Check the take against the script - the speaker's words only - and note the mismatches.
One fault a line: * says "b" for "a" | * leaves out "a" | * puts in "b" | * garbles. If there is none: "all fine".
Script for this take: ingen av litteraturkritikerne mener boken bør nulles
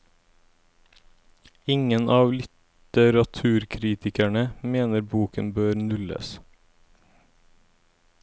all fine